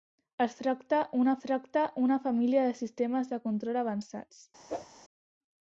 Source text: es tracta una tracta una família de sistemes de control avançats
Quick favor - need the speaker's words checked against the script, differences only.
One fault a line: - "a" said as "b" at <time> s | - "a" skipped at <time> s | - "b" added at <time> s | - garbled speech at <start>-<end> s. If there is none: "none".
none